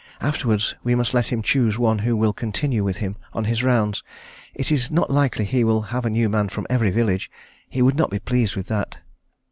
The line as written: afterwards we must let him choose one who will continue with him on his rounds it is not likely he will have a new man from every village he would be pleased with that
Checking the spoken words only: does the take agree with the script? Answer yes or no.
no